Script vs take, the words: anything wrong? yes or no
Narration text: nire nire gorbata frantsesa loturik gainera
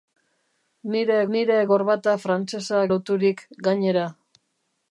no